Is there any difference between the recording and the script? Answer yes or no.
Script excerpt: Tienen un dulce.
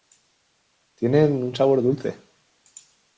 yes